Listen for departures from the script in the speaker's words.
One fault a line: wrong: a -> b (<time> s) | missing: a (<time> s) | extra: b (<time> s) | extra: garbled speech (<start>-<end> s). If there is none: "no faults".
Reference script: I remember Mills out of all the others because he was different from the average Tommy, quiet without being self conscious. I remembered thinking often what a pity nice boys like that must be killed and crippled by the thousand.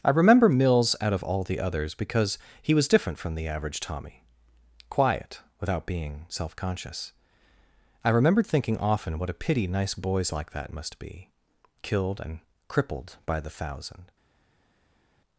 no faults